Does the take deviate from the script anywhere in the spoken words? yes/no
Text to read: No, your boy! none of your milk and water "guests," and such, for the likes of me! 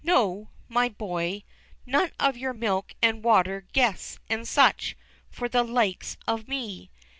yes